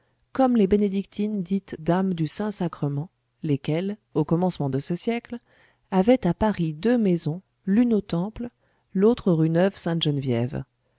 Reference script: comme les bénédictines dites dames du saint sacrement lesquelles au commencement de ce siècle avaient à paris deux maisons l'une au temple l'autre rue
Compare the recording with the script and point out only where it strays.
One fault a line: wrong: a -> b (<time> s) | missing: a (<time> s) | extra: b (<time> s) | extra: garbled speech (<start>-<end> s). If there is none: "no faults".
no faults